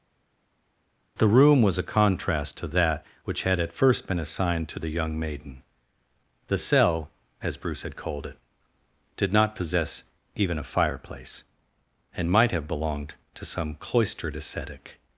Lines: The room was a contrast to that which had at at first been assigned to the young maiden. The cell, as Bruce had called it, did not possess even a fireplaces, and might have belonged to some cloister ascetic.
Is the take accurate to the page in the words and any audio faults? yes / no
no